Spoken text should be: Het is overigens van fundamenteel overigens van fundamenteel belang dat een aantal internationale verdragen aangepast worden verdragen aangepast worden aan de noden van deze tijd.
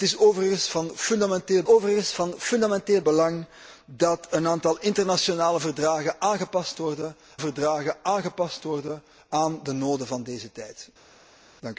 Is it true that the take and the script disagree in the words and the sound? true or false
false